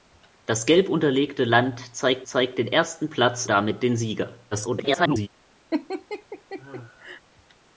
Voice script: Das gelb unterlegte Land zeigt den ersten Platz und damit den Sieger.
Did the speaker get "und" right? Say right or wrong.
wrong